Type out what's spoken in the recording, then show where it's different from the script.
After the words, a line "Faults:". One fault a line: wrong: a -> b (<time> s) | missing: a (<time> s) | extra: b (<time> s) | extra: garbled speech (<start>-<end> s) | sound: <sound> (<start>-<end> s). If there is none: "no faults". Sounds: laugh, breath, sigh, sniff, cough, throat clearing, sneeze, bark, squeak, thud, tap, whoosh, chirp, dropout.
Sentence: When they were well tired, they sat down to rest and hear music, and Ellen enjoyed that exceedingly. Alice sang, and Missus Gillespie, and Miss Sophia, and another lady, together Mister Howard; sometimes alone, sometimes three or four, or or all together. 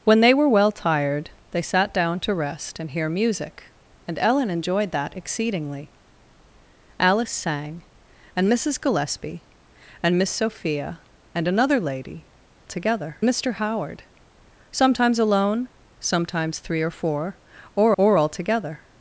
When they were well tired, they sat down to rest and hear music, and Ellen enjoyed that exceedingly. Alice sang, and Missus Gillespie, and Miss Sophia, and another lady, together Mister Howard; sometimes alone, sometimes three or four, or or all together.
Faults:
no faults